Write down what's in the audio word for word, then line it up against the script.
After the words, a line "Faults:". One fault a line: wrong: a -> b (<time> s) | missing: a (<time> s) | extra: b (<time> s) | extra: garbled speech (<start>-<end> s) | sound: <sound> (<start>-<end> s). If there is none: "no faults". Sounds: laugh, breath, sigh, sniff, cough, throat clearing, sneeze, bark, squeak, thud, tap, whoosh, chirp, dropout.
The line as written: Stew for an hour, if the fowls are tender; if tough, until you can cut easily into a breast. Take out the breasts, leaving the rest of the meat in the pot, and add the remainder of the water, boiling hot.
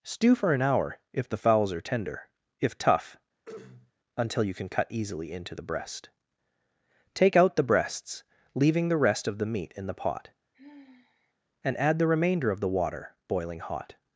Stew for an hour, if the fowls are tender; if tough, until you can cut easily into the breast. Take out the breasts, leaving the rest of the meat in the pot, and add the remainder of the water, boiling hot.
Faults:
sound: throat clearing (3.5-3.9 s)
wrong: a -> the (5.5 s)
sound: sigh (10.5-11.3 s)